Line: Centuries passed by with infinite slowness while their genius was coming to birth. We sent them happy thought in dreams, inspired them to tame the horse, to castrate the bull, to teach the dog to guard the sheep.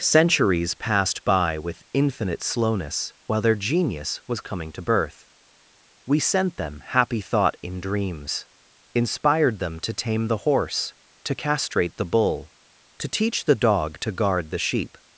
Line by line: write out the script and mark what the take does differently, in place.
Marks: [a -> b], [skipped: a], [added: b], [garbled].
Centuries passed by with infinite slowness while their genius was coming to birth. We sent them happy thought in dreams, inspired them to tame the horse, to castrate the bull, to teach the dog to guard the sheep.